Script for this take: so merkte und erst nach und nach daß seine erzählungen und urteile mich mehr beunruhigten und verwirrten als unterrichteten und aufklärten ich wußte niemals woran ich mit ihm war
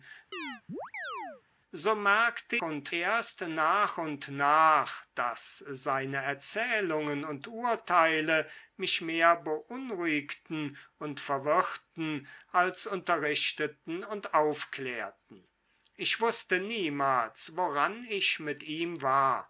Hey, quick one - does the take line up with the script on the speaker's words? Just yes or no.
yes